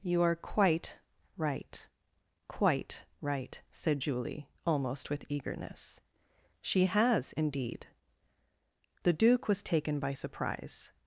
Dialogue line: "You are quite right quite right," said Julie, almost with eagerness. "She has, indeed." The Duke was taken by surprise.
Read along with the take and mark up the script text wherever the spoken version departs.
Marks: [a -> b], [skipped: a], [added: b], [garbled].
"You are quite right quite right," said Julie, almost with eagerness. "She has, indeed." The Duke was taken by surprise.